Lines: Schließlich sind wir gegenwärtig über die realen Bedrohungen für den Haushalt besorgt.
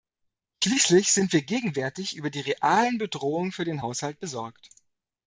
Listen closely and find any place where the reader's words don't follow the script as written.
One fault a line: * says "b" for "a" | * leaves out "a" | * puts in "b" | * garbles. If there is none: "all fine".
all fine